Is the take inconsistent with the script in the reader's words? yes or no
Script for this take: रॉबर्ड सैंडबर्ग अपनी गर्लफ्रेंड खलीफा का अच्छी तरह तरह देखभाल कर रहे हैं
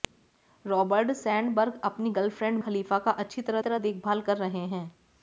no